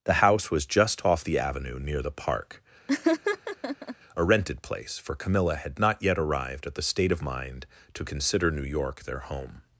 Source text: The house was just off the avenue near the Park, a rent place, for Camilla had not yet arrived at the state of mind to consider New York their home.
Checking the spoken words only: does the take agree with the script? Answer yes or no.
no